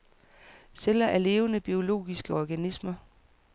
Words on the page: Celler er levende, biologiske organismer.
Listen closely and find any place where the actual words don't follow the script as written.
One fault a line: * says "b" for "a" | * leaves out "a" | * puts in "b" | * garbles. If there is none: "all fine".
all fine